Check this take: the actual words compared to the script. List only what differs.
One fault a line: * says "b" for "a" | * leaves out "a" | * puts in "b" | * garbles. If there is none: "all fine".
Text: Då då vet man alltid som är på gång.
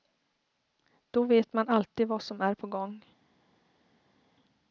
* leaves out "då"
* puts in "vad"